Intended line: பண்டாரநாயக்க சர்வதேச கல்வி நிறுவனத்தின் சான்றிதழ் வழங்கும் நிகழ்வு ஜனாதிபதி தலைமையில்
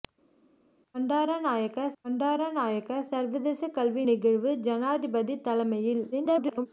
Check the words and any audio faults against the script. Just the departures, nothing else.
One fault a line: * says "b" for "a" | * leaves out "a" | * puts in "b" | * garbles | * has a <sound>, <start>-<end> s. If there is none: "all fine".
* puts in "பண்டாரநாயக்க"
* leaves out "நிறுவனத்தின் சான்றிதழ் வழங்கும்"
* garbles